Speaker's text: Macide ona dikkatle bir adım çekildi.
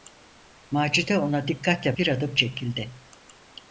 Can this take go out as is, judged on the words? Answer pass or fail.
pass